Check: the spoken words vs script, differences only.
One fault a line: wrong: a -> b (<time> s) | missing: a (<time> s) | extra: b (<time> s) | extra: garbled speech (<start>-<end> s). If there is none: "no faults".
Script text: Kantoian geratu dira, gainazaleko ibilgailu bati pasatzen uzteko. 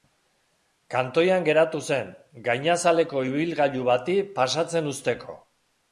wrong: dira -> zen (1.9 s)